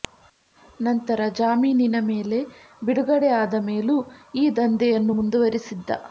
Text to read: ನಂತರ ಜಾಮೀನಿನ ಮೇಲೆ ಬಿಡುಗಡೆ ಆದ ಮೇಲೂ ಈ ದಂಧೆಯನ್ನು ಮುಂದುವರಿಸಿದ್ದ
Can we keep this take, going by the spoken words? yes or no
yes